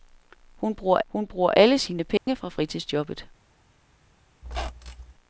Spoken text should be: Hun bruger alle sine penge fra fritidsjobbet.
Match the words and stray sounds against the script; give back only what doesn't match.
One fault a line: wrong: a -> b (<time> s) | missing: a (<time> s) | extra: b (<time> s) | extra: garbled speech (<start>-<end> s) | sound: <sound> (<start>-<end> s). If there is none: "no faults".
extra: hun bruger (1.1 s)
sound: dropout (2.2-2.3 s)
sound: squeak (4.4-5.1 s)